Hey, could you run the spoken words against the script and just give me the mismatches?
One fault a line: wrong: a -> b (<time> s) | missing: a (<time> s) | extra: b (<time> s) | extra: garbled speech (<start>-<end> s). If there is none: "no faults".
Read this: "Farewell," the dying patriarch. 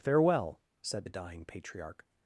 extra: said (0.8 s)